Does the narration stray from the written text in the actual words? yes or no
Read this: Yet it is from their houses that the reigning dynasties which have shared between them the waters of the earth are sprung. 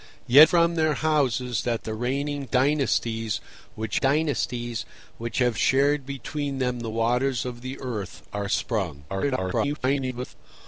yes